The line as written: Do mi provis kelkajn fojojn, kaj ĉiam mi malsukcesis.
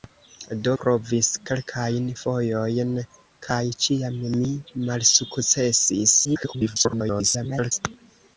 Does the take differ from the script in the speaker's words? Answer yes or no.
yes